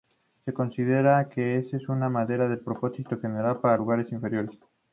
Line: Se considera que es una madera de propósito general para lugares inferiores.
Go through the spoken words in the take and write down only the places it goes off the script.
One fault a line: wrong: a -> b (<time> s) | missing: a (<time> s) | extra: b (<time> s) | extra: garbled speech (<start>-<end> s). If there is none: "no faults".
no faults